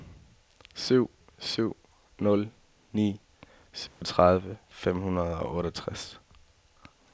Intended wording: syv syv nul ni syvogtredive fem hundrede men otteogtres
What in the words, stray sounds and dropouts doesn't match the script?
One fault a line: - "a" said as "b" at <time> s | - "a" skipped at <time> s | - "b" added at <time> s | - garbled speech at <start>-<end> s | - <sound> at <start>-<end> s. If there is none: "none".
- dropout at 3.9-4.0 s
- "men" said as "og" at 5.4 s